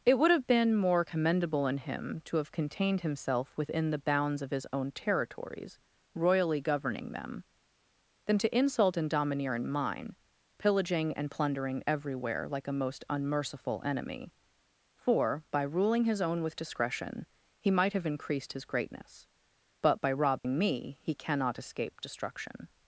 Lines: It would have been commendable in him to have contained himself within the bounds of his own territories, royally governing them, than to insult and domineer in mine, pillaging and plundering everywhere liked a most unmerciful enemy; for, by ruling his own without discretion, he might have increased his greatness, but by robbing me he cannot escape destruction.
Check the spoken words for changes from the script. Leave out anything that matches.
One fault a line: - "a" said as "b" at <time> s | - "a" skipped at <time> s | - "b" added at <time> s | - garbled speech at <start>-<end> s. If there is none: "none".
- "more" added at 0.8 s
- "liked" said as "like" at 12.5 s
- "without" said as "with" at 16.4 s